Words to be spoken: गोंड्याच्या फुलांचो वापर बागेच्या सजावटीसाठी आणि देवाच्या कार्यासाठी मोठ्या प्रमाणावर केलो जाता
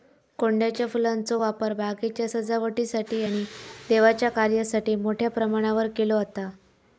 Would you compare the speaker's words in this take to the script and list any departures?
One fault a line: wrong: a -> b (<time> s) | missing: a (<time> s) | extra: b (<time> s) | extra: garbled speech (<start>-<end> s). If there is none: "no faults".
no faults